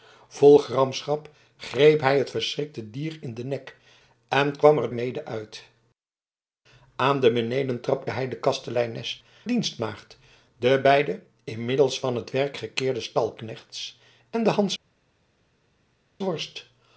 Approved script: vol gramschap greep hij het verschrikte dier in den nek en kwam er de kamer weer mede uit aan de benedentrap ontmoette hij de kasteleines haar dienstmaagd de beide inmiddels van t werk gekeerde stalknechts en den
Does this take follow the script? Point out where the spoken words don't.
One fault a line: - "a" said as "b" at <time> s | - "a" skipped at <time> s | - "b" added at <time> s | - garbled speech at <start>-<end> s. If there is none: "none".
- "de kamer weer" skipped at 4.9 s
- "ontmoette" skipped at 8.1 s
- "haar" skipped at 9.2 s